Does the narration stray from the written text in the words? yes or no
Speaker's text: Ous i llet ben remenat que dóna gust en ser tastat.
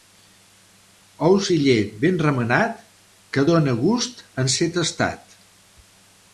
no